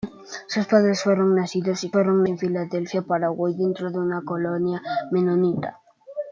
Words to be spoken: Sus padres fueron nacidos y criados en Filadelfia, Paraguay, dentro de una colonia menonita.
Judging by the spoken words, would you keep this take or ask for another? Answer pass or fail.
fail